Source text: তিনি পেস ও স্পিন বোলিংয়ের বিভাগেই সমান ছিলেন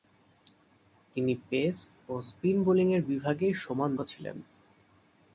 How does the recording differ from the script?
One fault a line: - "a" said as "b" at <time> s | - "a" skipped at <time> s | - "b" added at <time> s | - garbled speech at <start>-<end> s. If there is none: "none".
none